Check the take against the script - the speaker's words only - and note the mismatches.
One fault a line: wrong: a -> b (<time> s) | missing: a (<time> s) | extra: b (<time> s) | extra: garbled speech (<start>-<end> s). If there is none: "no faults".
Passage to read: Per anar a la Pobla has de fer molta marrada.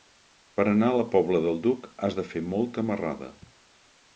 extra: del Duc (1.4 s)